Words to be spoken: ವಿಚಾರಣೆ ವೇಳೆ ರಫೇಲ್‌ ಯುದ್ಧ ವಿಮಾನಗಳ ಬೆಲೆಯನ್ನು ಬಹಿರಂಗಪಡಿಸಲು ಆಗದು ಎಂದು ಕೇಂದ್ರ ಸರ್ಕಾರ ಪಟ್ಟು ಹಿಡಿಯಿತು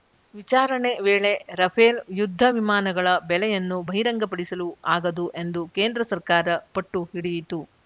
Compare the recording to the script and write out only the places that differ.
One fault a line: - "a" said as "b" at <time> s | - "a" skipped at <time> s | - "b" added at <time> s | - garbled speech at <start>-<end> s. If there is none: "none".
none